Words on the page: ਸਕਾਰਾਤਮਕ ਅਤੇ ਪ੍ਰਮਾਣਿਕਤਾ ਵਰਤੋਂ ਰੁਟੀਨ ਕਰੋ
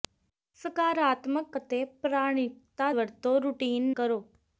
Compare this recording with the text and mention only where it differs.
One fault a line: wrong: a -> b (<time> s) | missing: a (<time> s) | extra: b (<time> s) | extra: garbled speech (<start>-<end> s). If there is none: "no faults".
no faults